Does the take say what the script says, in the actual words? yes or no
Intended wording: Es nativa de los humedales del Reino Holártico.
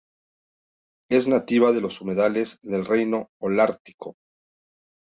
yes